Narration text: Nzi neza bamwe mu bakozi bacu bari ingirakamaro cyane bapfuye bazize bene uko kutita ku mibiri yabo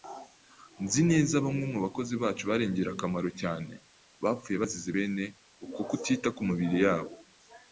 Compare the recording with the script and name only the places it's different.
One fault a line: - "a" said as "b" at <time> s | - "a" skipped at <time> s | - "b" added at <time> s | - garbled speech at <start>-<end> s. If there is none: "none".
none